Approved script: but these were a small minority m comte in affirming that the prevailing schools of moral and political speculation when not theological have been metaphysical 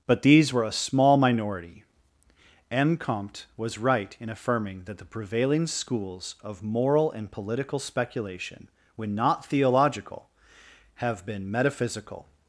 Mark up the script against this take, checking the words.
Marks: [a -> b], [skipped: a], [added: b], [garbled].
but these were a small minority m comte [added: was right] in affirming that the prevailing schools of moral and political speculation when not theological have been metaphysical